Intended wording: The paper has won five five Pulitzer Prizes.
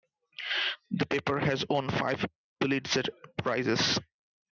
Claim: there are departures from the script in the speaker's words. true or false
true